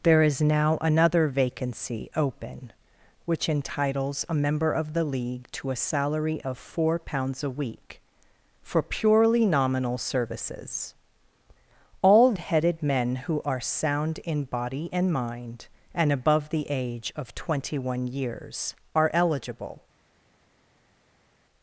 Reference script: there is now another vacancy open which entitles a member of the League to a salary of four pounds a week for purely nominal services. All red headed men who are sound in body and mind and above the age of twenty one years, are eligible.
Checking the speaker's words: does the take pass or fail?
fail